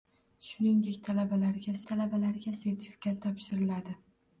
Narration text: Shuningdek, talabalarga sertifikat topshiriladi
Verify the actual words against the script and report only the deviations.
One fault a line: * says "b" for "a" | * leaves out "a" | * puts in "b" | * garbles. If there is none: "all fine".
* puts in "talabalarga"